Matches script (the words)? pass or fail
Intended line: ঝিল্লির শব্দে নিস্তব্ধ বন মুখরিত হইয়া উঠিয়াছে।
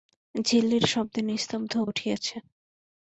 fail